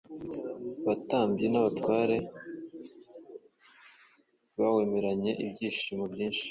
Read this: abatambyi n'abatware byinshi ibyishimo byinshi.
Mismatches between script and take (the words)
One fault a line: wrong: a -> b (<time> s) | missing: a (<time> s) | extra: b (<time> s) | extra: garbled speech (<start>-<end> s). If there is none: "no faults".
wrong: byinshi -> bawemeranye (4.6 s)